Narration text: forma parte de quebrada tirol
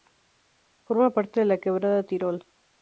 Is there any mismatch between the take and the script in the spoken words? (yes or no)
yes